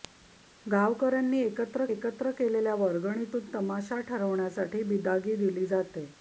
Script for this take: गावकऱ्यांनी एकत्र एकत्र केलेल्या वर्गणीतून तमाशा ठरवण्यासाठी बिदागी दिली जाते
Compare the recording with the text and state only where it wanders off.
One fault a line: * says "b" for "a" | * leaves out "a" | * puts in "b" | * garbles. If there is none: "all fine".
all fine